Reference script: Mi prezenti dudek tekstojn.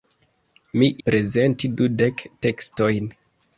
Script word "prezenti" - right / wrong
right